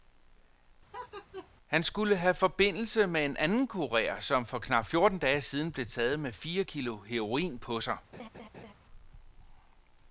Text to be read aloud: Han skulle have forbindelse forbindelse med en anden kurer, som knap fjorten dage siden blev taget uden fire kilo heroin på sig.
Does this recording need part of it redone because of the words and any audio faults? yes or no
yes